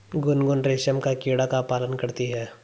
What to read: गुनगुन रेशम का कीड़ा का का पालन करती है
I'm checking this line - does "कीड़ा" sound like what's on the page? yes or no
yes